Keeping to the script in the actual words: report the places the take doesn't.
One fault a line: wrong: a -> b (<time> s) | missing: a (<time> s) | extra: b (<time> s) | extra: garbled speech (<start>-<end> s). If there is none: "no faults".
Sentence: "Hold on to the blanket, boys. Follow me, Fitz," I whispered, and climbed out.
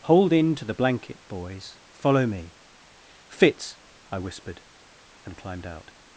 wrong: on -> in (0.3 s)